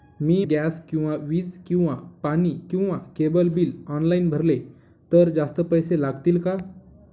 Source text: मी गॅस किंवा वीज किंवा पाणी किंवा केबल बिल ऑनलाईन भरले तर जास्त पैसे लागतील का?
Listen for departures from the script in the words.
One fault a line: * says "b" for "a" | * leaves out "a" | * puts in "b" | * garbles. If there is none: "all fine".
all fine